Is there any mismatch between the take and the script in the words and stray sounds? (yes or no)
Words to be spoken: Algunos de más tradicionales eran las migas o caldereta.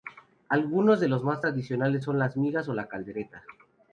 yes